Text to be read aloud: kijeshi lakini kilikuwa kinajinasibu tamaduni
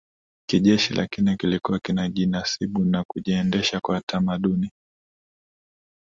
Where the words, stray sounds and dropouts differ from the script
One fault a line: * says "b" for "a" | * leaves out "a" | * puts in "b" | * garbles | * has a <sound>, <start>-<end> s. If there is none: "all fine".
* puts in "na kujiendesha kwa"